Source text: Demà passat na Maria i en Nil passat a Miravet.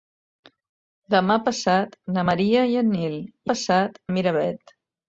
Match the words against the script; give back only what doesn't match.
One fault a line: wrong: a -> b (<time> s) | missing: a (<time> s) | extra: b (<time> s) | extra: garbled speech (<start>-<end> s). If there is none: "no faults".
no faults